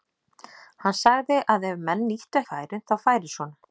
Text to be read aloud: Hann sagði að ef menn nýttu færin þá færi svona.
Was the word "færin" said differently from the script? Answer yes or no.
no